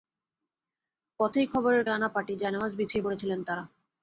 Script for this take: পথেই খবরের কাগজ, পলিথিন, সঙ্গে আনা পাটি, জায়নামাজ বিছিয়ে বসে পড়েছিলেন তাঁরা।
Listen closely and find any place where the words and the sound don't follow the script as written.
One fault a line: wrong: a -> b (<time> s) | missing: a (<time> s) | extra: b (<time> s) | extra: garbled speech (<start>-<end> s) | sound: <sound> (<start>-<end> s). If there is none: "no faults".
missing: কাগজ পলিথিন সঙ্গে (1.8 s)
missing: বসে (3.1 s)